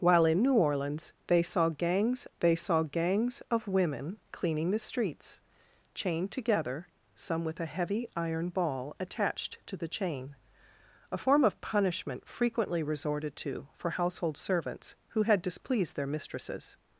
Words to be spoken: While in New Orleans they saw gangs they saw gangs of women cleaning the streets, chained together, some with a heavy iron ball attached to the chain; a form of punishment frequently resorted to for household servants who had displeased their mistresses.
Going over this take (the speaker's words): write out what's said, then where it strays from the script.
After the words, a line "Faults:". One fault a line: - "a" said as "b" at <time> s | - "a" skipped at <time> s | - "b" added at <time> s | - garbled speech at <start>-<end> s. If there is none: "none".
While in New Orleans they saw gangs they saw gangs of women cleaning the streets, chained together, some with a heavy iron ball attached to the chain; a form of punishment frequently resorted to for household servants who had displeased their mistresses.
Faults:
none